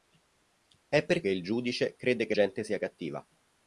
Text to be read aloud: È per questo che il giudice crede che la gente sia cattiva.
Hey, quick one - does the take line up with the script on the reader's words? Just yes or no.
no